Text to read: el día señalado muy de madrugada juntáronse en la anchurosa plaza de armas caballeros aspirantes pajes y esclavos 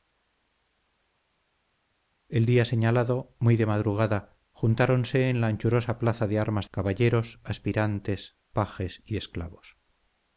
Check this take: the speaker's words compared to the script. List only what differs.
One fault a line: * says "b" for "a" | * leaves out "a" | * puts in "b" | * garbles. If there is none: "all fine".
all fine